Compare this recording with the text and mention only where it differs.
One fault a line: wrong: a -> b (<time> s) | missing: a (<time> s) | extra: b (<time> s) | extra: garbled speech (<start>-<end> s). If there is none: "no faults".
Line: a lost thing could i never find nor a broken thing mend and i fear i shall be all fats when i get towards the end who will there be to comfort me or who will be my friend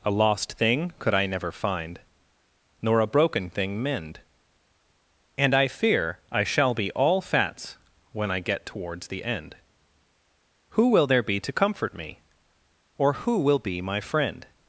no faults